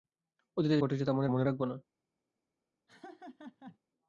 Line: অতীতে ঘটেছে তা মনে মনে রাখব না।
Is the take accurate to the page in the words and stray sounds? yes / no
no